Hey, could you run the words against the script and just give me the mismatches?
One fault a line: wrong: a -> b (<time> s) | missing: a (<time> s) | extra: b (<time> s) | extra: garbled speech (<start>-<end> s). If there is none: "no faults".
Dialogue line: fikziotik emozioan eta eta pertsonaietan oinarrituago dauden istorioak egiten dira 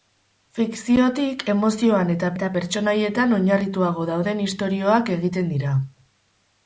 no faults